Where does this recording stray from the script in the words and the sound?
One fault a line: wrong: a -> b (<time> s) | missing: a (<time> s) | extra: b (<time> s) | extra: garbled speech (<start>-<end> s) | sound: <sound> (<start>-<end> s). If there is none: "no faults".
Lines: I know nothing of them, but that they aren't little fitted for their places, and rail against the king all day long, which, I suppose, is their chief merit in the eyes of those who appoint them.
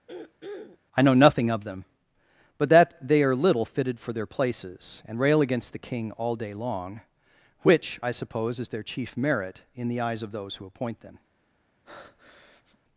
sound: throat clearing (0.1-0.8 s)
wrong: aren't -> are (3.2 s)
sound: breath (11.9-12.8 s)